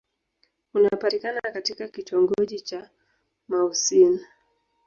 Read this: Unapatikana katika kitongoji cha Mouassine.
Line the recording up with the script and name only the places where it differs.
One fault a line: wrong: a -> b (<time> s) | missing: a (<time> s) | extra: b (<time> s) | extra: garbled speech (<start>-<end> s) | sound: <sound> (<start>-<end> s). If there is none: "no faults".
no faults